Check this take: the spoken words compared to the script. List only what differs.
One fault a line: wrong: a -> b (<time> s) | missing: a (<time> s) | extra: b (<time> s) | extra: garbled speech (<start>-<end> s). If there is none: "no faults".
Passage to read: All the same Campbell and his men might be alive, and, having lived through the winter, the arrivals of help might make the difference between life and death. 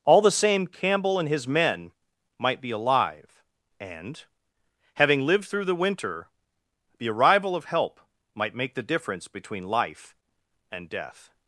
wrong: arrivals -> arrival (7.1 s)